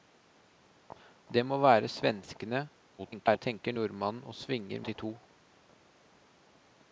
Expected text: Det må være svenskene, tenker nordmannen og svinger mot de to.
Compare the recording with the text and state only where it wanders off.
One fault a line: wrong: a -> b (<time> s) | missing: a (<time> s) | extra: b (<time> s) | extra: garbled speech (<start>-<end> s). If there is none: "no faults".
extra: garbled speech (3.0-3.4 s)
missing: mot (4.8 s)